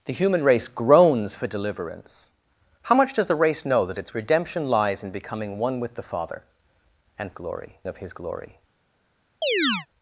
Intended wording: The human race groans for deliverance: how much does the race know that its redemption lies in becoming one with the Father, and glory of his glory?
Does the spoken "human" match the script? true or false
true